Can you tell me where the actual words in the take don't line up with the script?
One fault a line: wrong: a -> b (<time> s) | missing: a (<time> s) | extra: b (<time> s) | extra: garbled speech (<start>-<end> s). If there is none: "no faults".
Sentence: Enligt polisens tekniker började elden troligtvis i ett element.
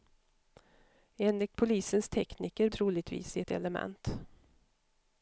missing: började elden (2.7 s)